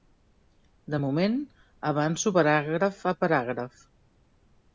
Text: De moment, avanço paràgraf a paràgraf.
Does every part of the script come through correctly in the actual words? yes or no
yes